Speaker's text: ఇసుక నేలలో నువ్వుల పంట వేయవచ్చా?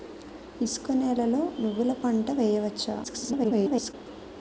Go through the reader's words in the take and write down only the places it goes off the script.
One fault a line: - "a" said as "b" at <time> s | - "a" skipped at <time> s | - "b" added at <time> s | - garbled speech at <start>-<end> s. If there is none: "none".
- garbled speech at 3.0-3.9 s